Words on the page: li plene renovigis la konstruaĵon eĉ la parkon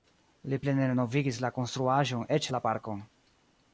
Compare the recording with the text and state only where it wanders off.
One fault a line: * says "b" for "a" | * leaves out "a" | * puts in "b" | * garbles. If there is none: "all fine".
all fine